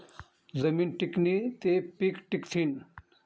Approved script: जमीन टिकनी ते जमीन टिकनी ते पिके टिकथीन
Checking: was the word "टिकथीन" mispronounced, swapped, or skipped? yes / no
no